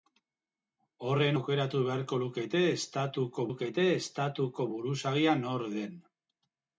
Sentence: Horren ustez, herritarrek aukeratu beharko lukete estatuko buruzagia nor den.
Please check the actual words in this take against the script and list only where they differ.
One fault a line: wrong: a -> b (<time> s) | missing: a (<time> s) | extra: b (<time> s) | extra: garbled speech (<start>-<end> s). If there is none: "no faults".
wrong: ustez herritarrek aukeratu beharko -> aukeratu beharko lukete estatuko (1.3 s)